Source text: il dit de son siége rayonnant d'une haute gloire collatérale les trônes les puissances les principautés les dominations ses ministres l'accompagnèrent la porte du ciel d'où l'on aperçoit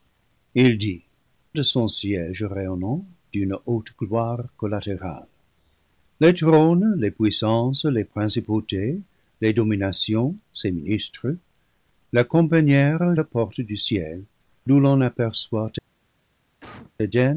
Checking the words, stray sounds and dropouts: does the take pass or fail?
fail